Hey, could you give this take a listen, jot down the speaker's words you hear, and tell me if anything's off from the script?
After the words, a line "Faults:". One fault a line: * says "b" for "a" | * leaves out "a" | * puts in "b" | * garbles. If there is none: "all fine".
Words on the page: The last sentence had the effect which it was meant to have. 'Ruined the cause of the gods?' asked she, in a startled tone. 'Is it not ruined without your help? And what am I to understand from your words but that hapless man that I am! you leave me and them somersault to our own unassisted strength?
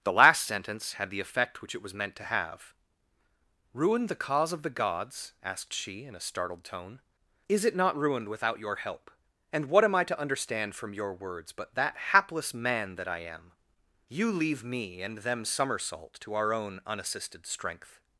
The last sentence had the effect which it was meant to have. 'Ruined the cause of the gods?' asked she, in a startled tone. 'Is it not ruined without your help? And what am I to understand from your words but that hapless man that I am! you leave me and them somersault to our own unassisted strength?
Faults:
all fine